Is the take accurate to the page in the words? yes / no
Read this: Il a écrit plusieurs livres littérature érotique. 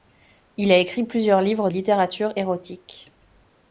yes